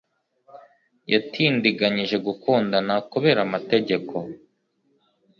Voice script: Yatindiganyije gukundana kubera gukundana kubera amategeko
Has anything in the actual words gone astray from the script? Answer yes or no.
yes